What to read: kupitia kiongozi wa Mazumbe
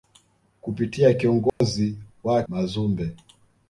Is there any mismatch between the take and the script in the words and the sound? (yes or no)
yes